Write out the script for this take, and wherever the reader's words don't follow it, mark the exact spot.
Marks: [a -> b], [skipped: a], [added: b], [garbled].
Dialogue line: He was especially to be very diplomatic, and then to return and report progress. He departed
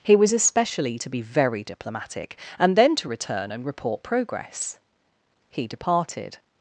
He was especially to be very diplomatic, and then to return and report progress. He departed